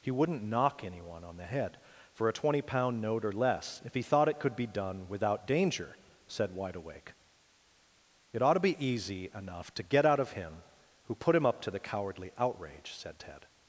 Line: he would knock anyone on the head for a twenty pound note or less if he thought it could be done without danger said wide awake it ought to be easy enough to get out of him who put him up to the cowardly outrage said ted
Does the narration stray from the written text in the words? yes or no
yes